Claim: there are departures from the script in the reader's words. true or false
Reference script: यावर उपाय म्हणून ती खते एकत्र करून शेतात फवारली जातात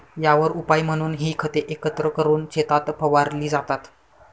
true